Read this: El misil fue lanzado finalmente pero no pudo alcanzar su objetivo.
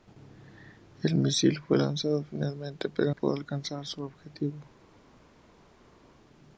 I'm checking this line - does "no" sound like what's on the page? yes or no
no